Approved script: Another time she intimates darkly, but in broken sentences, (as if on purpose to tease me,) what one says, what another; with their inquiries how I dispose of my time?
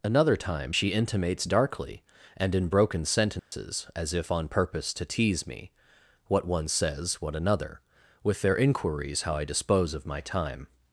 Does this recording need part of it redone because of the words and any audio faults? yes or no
yes